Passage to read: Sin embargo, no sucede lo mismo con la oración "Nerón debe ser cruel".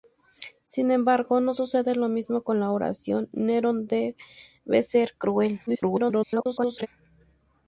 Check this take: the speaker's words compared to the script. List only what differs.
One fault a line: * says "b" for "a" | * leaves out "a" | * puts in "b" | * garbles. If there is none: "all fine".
* garbles